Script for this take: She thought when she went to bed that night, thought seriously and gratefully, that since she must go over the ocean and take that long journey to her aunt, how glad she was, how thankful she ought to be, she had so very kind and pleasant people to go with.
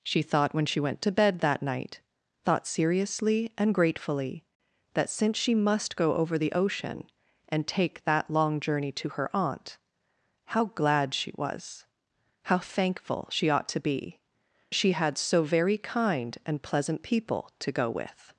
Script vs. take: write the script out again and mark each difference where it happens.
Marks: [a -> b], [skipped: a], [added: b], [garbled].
She thought when she went to bed that night, thought seriously and gratefully, that since she must go over the ocean and take that long journey to her aunt, how glad she was, how thankful she ought to be, she had so very kind and pleasant people to go with.